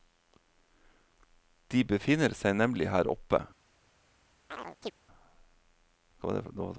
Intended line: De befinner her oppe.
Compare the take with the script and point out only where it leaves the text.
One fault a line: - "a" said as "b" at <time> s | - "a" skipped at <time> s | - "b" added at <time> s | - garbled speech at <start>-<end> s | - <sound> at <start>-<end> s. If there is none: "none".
- "seg nemlig" added at 2.4 s
- chirp at 4.5-4.9 s